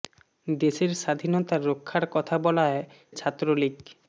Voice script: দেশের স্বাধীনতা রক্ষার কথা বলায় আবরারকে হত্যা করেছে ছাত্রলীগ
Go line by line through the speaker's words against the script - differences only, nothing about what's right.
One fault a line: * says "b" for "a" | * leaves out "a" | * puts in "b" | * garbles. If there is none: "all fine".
* leaves out "আবরারকে হত্যা করেছে"